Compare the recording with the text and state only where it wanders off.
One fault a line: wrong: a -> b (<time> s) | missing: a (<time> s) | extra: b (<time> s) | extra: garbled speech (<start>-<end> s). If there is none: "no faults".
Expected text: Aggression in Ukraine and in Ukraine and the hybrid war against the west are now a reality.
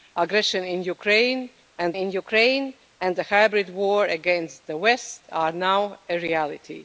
no faults